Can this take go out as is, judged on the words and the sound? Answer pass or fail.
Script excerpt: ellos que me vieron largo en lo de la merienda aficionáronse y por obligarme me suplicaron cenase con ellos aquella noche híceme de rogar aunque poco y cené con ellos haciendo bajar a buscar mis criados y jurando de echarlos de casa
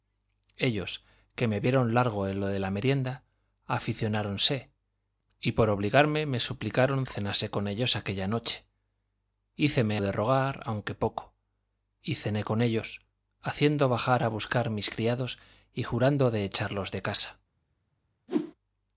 fail